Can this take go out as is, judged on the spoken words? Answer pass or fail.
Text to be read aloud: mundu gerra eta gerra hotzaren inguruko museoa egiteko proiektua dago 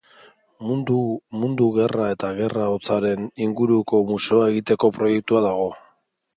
pass